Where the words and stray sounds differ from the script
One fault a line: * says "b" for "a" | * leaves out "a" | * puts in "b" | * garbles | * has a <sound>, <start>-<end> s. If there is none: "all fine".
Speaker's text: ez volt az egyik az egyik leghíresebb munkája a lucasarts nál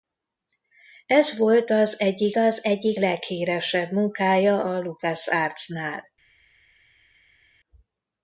all fine